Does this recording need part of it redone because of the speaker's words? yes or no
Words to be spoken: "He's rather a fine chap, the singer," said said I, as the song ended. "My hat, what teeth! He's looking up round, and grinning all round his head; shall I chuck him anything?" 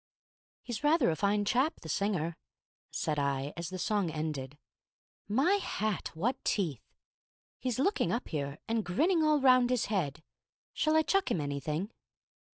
yes